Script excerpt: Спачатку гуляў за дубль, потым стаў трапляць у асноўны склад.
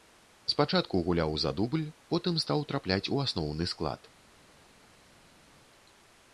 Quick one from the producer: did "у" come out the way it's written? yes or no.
yes